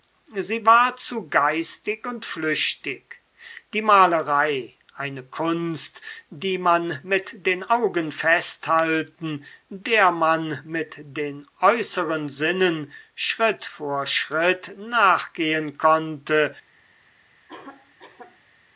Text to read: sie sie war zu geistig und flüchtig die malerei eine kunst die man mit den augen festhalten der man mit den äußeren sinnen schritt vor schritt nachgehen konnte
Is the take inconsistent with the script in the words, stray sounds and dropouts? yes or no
yes